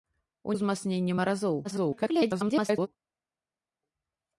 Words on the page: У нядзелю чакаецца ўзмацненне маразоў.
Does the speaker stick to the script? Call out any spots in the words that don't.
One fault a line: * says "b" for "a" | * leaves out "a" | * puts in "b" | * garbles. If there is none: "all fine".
* leaves out "нядзелю чакаецца"
* garbles